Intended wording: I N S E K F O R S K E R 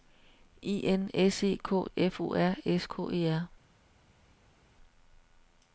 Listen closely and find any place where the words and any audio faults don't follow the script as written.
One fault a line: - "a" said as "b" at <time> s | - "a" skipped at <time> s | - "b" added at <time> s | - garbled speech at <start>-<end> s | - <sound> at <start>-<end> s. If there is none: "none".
none